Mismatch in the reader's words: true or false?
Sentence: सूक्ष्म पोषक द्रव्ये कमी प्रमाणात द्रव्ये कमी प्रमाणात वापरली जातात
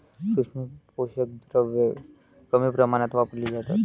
true